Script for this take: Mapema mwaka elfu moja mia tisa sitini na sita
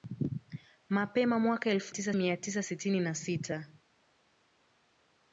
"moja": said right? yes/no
no